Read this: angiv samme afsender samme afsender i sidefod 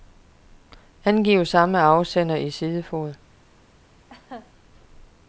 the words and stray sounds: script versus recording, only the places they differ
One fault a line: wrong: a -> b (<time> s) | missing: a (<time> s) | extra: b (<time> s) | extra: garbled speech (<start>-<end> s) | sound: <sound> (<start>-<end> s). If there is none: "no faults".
missing: samme afsender (2.4 s)
sound: laugh (4.1-4.5 s)